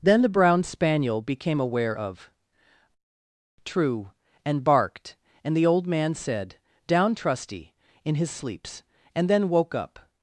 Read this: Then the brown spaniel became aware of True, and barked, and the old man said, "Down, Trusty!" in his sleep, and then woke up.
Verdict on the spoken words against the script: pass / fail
fail